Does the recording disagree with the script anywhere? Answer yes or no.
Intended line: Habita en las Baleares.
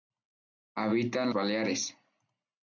yes